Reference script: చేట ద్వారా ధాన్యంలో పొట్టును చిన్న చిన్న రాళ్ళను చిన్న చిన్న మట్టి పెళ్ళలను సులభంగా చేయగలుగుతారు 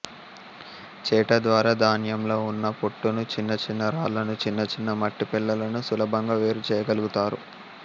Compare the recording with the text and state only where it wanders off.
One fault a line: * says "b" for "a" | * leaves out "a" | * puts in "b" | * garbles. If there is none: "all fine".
* puts in "ఉన్న"
* puts in "వేరు"